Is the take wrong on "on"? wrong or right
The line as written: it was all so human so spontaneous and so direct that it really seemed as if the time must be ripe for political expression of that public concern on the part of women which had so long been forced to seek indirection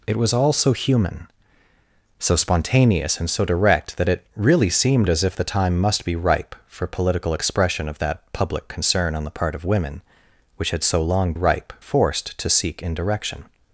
right